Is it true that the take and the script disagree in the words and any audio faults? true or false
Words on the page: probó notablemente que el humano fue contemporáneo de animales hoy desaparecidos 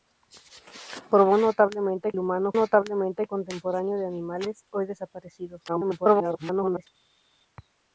true